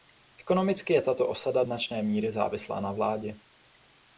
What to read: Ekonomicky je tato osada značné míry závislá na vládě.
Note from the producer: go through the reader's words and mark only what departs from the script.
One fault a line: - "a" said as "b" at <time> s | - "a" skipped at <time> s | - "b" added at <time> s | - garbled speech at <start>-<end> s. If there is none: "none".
none